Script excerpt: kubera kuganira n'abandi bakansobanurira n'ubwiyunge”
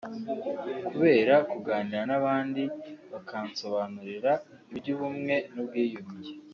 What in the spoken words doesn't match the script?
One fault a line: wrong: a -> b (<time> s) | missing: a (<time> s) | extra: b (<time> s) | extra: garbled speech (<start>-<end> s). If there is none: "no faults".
extra: iby'ubumwe (4.7 s)